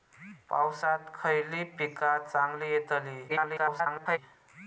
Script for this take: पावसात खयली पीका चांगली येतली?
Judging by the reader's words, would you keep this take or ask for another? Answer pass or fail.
fail